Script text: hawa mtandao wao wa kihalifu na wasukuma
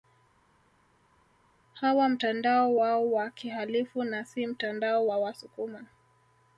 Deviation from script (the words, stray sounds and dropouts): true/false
true